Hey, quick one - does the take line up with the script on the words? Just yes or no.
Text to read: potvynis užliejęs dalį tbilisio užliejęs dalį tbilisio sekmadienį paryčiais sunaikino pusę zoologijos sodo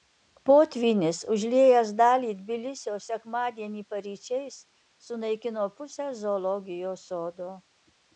no